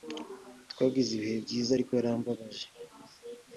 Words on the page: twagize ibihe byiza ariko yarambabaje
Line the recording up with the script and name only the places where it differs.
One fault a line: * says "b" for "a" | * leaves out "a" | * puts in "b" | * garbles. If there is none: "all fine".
all fine